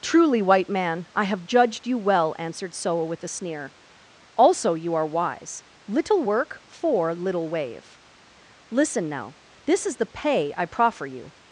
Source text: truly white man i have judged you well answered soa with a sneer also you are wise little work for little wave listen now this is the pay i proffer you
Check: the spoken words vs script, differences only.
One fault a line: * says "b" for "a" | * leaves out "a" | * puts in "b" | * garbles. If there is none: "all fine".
all fine